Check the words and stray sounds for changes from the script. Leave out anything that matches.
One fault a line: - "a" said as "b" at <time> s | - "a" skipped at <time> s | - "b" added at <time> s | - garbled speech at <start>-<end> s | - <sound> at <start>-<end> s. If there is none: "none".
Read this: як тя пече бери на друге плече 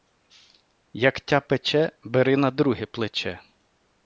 none